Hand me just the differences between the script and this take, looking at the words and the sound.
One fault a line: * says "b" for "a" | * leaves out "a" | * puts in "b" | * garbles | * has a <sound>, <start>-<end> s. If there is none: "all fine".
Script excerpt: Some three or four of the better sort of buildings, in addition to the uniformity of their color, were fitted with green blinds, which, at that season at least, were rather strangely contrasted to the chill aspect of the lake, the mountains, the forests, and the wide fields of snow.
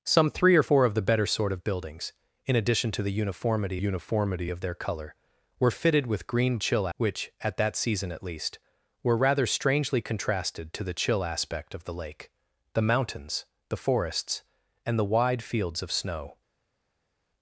* puts in "uniformity"
* says "chill" for "blinds"